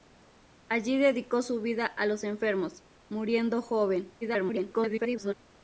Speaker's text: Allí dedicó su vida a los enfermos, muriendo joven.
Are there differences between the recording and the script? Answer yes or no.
yes